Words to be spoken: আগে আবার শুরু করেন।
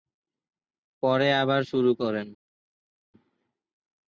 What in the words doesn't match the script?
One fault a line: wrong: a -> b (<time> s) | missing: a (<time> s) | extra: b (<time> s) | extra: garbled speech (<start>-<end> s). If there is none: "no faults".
wrong: আগে -> পরে (1.0 s)